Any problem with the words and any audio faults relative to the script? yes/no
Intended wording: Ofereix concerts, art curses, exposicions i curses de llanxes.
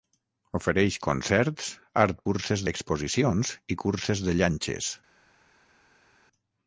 no